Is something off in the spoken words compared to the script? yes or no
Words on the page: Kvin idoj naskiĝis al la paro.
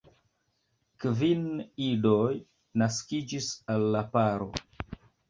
no